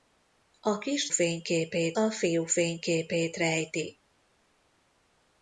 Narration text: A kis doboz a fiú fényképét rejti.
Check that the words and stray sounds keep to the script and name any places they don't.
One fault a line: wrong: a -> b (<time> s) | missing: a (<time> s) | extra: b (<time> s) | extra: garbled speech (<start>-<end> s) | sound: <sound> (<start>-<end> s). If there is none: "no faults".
wrong: doboz -> fényképét (1.1 s)